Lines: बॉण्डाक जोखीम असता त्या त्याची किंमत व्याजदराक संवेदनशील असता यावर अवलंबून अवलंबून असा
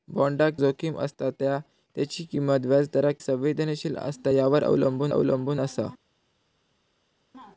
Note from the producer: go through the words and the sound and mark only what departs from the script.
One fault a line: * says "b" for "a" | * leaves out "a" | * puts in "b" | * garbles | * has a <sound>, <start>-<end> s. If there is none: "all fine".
all fine